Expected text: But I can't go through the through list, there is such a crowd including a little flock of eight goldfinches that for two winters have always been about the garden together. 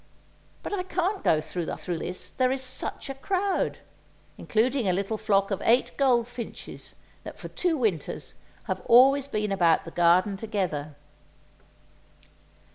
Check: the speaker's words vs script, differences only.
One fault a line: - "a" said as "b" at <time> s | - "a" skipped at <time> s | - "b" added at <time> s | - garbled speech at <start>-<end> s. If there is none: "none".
none